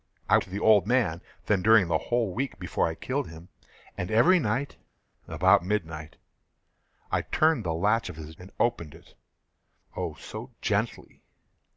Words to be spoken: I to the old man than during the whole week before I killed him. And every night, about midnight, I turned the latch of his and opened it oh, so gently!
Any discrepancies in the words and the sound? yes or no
no